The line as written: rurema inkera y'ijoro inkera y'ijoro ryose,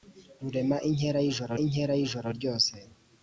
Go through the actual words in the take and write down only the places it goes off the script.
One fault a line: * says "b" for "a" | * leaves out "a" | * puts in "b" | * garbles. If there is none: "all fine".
all fine